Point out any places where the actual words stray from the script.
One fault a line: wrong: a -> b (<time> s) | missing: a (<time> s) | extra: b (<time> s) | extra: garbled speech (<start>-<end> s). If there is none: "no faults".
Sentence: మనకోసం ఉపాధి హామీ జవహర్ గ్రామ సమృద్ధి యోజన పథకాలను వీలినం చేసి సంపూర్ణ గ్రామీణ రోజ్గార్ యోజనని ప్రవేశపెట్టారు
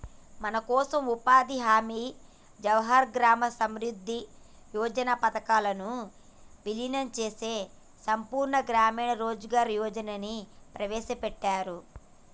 no faults